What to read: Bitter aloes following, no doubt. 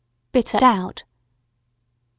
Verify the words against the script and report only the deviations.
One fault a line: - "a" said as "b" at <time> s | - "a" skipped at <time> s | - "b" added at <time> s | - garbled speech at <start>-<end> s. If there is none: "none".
- "aloes following no" skipped at 0.6 s